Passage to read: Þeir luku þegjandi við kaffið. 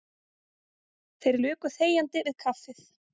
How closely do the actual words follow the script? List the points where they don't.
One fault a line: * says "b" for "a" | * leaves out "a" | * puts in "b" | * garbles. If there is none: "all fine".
all fine